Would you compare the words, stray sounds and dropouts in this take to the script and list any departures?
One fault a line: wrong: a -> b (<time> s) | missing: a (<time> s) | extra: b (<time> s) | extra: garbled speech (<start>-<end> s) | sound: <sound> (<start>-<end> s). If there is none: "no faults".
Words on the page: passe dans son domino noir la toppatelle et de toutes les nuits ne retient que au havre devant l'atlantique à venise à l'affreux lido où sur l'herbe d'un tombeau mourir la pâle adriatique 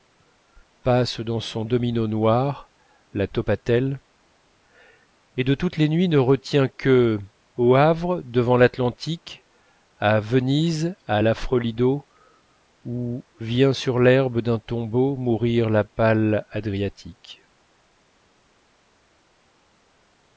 extra: vient (13.4 s)